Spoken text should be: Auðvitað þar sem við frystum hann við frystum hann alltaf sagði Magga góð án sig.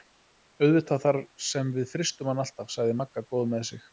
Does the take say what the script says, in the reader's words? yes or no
no